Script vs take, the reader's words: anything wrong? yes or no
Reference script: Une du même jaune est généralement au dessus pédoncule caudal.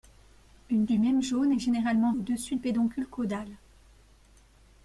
no